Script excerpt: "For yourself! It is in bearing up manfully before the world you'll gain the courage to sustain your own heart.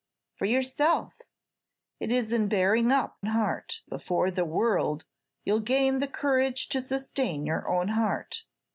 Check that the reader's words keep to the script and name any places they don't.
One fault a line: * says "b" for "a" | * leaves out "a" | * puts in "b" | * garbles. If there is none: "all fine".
* says "heart" for "manfully"